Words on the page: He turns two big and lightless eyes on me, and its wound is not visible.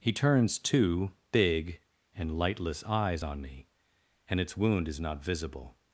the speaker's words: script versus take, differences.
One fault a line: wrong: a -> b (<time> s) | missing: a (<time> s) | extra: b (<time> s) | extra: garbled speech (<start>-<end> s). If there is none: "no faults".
no faults